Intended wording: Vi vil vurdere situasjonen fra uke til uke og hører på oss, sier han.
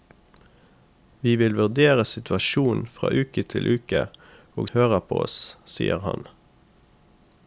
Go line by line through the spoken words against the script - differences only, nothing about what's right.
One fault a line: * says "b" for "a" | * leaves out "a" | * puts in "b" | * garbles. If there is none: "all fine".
all fine